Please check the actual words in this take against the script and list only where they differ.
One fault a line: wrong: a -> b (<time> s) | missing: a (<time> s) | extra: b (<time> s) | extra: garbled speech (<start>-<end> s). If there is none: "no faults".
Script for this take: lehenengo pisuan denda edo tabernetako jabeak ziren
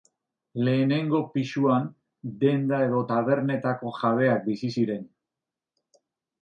extra: bizi (4.5 s)